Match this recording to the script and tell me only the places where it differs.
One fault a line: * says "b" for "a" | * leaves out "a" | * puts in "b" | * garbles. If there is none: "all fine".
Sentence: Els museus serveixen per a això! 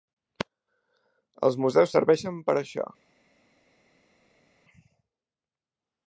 all fine